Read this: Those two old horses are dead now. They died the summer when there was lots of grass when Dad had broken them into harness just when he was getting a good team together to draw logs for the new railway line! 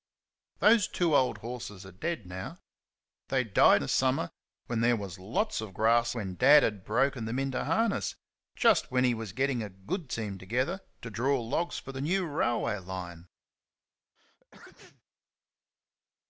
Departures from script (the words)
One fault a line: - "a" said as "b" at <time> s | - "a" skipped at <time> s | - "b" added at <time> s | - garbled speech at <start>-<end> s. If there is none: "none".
none